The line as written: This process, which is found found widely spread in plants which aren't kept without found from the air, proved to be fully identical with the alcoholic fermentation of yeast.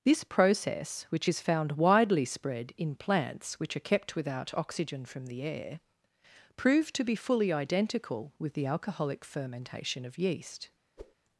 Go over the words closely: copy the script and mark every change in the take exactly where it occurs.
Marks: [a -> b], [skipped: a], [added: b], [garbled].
This process, which is found [skipped: found] widely spread in plants which [aren't -> are] kept without [found -> oxygen] from the air, proved to be fully identical with the alcoholic fermentation of yeast.